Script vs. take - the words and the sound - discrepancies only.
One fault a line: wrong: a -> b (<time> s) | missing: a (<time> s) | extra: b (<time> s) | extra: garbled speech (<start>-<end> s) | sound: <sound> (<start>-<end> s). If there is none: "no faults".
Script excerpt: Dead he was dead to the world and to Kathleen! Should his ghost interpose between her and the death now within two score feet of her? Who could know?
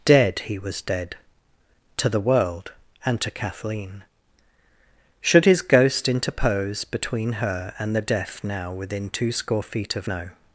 missing: her Who could (10.1 s)